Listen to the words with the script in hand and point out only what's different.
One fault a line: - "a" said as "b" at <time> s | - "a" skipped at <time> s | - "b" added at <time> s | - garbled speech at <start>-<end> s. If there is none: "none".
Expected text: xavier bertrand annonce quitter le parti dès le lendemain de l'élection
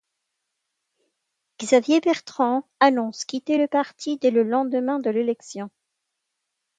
none